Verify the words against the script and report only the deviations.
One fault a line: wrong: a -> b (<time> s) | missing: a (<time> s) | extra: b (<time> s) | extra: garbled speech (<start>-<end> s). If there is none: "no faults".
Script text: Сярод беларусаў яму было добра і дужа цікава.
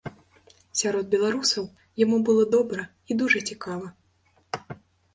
no faults